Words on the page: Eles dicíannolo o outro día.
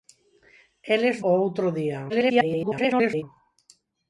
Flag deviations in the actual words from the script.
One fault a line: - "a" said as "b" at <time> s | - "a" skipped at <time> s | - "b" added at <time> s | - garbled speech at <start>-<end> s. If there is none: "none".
- "dicíannolo" skipped at 1.2 s
- garbled speech at 2.1-3.2 s